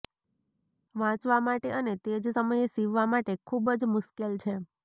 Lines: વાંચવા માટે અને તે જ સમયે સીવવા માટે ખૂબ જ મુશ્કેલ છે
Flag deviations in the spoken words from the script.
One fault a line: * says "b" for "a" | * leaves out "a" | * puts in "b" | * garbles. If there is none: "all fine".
all fine